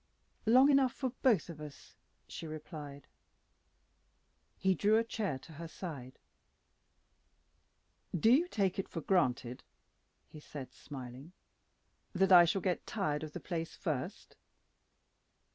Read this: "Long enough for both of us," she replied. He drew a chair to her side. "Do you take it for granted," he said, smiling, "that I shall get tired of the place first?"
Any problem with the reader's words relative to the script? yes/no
no